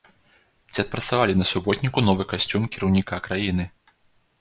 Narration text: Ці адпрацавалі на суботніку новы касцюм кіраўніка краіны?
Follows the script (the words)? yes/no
yes